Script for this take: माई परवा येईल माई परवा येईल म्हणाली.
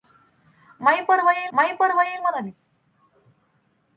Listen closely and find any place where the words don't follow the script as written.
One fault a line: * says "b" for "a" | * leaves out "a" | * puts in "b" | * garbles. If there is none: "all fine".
all fine